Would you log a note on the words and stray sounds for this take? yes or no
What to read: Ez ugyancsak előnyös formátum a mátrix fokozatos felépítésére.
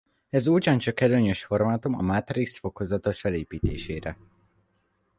no